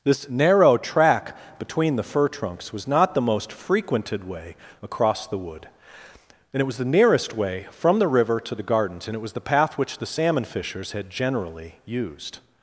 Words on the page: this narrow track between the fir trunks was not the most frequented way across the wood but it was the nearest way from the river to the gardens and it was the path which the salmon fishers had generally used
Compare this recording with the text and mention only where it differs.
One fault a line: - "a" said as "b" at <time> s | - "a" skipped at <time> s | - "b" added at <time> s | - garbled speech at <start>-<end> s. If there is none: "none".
- "but" said as "and" at 6.5 s